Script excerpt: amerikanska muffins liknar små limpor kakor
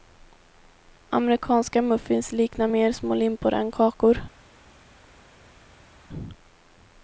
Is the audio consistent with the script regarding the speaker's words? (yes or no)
no